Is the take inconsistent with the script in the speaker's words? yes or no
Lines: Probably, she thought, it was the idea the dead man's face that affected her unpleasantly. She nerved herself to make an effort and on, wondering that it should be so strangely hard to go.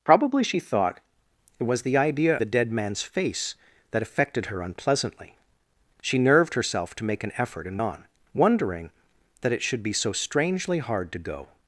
no